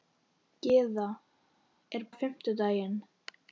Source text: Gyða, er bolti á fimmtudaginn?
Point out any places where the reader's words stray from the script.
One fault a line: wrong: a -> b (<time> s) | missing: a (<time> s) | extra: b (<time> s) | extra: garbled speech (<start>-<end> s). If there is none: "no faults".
missing: bolti (2.1 s)